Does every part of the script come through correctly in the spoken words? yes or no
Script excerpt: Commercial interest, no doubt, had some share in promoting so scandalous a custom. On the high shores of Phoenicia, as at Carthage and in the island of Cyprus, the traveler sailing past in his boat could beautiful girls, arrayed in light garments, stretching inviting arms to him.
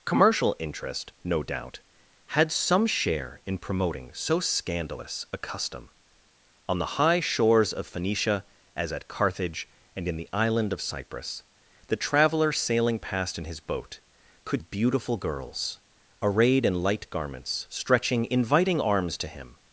yes